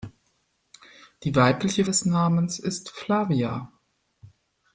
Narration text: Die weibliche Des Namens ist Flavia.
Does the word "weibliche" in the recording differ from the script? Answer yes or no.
no